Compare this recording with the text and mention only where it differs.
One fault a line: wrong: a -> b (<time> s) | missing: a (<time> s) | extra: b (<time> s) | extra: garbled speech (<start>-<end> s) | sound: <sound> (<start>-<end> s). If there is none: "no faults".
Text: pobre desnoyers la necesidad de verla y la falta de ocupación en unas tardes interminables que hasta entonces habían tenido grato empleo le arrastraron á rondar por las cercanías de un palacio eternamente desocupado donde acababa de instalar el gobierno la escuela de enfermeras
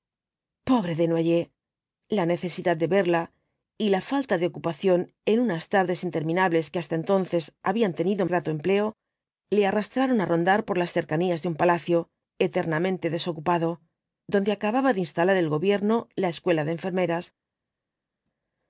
no faults